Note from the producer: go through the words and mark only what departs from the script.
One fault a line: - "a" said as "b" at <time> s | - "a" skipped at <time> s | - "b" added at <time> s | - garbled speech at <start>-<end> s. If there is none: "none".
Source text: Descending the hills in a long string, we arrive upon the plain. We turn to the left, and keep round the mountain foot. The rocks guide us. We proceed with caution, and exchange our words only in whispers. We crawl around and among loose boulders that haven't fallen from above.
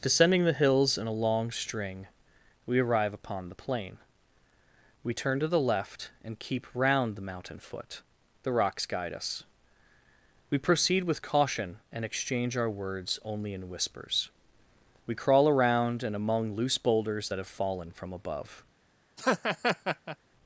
- "haven't" said as "have" at 17.4 s